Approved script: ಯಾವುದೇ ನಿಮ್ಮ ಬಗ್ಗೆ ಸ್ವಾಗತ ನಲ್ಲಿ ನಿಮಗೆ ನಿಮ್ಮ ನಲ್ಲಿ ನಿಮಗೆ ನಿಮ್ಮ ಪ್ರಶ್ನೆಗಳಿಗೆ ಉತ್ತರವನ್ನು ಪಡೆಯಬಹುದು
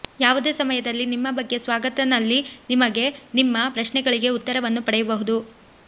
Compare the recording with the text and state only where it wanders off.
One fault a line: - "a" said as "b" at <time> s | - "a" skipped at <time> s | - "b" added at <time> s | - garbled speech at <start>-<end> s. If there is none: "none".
- "ಸಮಯದಲ್ಲಿ" added at 0.5 s
- "ನಲ್ಲಿ ನಿಮಗೆ ನಿಮ್ಮ" skipped at 3.6 s